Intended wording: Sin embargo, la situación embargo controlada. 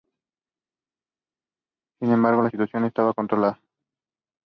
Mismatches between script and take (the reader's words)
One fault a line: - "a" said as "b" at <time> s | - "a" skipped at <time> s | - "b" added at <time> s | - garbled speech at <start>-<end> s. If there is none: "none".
- "embargo" said as "estaba" at 2.8 s